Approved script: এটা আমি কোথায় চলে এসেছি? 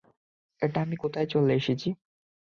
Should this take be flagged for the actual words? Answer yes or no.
no